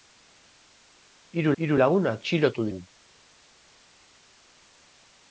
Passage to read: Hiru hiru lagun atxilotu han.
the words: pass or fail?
pass